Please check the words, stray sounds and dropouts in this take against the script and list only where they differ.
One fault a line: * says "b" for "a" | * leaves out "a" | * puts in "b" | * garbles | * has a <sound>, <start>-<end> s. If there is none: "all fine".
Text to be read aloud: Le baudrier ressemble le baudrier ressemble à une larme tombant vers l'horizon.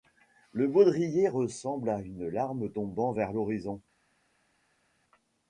* leaves out "le baudrier ressemble"